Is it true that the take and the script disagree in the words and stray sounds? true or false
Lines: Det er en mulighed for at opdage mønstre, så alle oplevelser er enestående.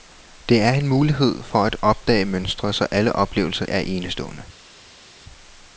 false